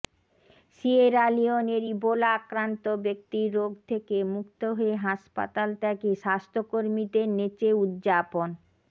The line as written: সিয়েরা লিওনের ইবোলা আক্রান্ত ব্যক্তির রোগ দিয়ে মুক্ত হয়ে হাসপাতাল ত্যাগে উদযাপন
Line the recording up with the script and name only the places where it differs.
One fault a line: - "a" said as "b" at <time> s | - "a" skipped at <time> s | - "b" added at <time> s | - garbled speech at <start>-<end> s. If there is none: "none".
- "দিয়ে" said as "থেকে" at 3.9 s
- "স্বাস্থ্যকর্মীদের নেচে" added at 6.2 s